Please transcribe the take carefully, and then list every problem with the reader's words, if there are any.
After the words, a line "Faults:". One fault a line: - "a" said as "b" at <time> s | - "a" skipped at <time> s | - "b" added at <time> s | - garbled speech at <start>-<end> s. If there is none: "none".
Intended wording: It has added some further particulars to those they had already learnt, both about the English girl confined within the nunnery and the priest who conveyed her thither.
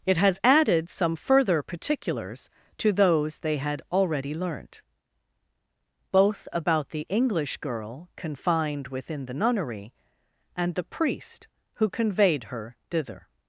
It has added some further particulars to those they had already learnt, both about the English girl confined within the nunnery and the priest who conveyed her thither.
Faults:
none